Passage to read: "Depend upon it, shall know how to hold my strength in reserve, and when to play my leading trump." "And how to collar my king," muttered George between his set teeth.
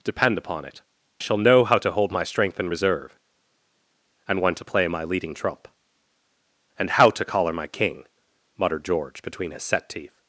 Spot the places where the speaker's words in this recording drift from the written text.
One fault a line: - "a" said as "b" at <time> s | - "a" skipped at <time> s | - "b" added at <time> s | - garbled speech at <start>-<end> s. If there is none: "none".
none